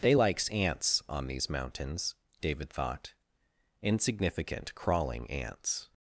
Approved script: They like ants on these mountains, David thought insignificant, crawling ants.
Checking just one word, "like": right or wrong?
wrong